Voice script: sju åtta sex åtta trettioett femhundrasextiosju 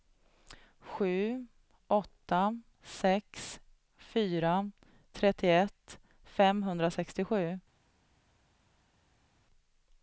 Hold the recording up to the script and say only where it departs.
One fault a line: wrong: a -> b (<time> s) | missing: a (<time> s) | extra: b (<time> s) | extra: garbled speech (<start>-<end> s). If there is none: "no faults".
wrong: åtta -> fyra (4.0 s)